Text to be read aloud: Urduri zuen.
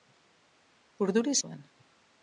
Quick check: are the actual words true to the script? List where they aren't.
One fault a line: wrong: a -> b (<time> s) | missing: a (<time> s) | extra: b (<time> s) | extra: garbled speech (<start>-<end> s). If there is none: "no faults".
no faults